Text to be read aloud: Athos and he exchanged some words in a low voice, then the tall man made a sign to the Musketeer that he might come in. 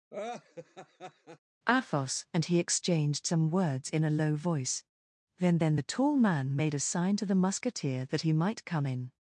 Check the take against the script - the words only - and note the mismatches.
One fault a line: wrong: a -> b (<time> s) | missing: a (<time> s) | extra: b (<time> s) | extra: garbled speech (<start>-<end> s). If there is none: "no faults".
extra: then (5.6 s)